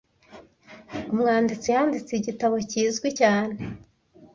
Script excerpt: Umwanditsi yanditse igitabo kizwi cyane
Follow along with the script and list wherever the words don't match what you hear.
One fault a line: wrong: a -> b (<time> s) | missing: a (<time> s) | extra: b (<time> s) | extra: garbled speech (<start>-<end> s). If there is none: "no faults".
no faults